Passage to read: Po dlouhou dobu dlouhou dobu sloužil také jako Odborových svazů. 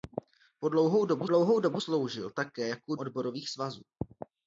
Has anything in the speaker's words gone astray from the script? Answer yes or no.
no